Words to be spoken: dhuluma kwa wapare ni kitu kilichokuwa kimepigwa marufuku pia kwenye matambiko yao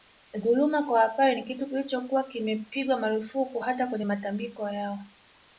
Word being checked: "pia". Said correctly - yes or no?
no